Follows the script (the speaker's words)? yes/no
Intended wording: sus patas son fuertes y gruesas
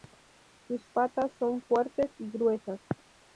yes